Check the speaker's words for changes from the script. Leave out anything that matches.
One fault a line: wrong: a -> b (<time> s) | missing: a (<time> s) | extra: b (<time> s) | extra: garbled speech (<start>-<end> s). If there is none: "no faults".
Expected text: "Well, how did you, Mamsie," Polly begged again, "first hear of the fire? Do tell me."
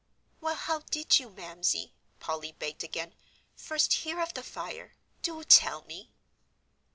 no faults